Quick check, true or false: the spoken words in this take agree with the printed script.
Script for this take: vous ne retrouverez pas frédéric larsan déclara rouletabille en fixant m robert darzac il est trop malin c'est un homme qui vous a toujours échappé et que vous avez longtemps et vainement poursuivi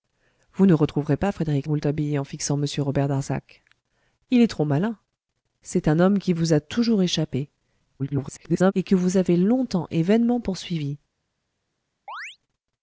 false